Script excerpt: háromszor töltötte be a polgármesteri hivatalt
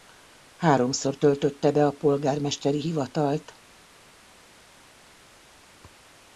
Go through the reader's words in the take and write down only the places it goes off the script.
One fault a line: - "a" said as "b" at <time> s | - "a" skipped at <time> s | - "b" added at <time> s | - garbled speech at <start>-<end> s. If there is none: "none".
none